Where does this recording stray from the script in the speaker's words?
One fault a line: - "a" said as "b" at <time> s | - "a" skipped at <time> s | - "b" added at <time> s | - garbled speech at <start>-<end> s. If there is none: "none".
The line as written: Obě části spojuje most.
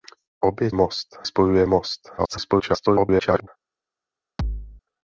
- "části" said as "most" at 0.7 s
- garbled speech at 2.2-3.5 s